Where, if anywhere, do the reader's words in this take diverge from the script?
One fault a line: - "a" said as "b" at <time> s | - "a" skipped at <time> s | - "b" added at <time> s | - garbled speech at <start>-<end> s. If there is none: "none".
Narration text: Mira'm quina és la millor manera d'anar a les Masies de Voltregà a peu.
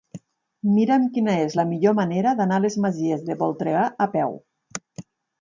none